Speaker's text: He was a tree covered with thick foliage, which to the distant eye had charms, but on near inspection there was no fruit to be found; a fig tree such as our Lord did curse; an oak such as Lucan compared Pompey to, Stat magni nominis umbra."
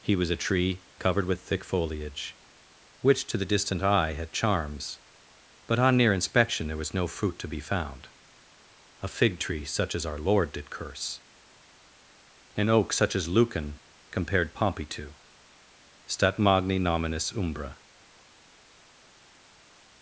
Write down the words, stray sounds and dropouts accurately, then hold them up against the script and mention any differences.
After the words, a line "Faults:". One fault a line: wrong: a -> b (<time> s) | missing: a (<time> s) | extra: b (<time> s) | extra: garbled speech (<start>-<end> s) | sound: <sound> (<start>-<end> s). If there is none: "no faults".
He was a tree covered with thick foliage, which to the distant eye had charms, but on near inspection there was no fruit to be found; a fig tree such as our Lord did curse; an oak such as Lucan compared Pompey to, Stat magni nominis umbra."
Faults:
no faults